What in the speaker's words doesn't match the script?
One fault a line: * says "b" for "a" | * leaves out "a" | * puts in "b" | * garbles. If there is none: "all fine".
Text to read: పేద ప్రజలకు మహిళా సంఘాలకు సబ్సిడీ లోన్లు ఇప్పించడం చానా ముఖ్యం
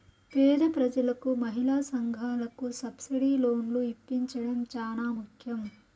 all fine